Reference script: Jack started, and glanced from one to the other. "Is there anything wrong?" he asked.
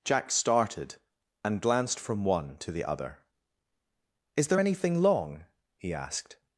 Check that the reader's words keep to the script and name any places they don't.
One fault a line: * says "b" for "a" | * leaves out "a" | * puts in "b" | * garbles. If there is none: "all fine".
* says "long" for "wrong"